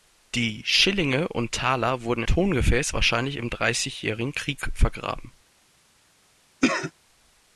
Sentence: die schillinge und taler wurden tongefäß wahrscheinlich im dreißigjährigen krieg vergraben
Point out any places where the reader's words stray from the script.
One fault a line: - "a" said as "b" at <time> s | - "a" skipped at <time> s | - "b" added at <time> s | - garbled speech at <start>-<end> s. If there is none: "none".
none